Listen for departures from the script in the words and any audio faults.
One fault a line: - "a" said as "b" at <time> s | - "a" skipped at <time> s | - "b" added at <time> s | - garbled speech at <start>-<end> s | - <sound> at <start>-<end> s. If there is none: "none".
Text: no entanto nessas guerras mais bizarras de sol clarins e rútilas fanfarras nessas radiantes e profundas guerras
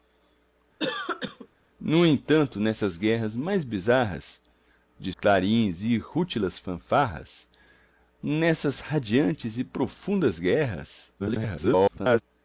- cough at 0.8-1.5 s
- "sol" skipped at 5.1 s
- garbled speech at 11.2-12.2 s